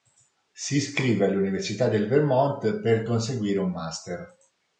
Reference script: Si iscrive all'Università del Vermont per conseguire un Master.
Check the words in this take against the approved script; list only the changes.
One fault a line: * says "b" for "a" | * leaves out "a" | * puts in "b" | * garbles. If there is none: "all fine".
all fine